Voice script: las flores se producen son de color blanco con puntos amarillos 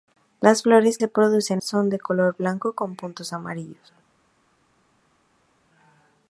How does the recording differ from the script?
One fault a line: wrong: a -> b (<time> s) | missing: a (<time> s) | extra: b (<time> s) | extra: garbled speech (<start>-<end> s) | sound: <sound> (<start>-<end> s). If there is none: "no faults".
no faults